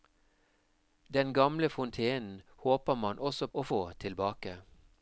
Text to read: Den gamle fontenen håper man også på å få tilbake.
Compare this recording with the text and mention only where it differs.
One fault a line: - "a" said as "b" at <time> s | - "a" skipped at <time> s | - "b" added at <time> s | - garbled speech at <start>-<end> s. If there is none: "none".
- "på" skipped at 3.5 s